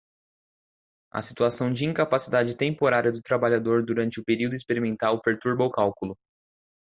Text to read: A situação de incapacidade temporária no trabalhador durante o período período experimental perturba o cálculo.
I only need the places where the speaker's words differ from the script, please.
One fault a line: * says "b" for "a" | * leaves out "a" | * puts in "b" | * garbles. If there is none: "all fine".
* says "do" for "no"
* leaves out "período"